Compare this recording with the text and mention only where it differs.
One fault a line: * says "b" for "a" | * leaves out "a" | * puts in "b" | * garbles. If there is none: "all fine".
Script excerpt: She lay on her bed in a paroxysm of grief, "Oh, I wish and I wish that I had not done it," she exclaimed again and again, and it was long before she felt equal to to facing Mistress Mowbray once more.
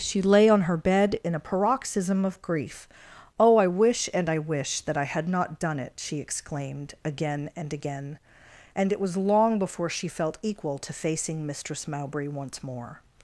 * leaves out "to"